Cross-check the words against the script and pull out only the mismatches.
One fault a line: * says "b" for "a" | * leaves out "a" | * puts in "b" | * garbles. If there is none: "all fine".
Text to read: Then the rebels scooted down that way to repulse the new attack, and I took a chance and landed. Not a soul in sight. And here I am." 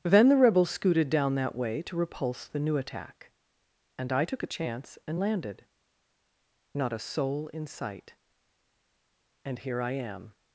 all fine